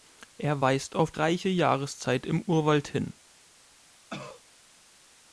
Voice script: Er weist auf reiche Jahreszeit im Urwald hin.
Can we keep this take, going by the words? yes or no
yes